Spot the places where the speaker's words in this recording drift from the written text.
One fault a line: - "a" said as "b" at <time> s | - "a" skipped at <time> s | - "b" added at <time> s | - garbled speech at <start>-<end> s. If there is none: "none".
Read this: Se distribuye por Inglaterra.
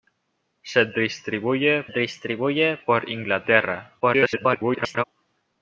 - "distribuye" added at 1.9 s
- garbled speech at 4.0-5.0 s